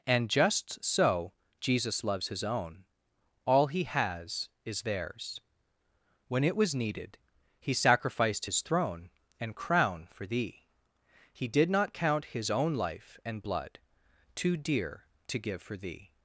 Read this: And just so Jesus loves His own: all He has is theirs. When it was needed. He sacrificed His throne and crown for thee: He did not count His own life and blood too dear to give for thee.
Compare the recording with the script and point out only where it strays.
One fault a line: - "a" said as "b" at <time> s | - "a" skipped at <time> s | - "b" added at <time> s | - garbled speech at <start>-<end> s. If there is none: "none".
none